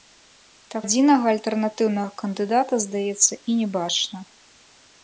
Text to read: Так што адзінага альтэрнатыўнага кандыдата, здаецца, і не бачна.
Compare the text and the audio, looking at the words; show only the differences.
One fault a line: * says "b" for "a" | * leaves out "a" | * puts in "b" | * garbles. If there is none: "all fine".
* leaves out "што"